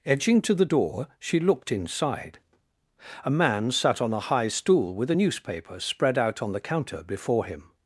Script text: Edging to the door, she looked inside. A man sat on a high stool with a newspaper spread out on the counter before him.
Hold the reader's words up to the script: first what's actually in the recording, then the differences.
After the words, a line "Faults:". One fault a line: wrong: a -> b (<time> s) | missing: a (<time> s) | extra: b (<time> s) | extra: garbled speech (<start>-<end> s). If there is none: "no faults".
Edging to the door, she looked inside. A man sat on a high stool with a newspaper spread out on the counter before him.
Faults:
no faults